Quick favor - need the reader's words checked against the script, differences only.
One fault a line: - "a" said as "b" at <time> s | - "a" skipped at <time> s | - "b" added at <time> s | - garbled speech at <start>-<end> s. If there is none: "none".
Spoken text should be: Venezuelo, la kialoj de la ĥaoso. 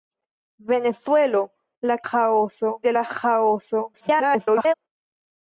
- "kialoj" said as "ĥaoso" at 2.1 s
- garbled speech at 3.9-4.7 s